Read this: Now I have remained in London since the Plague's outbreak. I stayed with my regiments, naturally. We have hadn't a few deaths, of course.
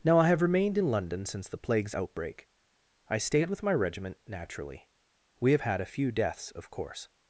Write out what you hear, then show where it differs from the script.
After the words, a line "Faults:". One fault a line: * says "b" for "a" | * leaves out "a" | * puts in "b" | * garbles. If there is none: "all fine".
Now I have remained in London since the Plague's outbreak. I stayed with my regiment, naturally. We have had a few deaths, of course.
Faults:
* says "regiment" for "regiments"
* says "had" for "hadn't"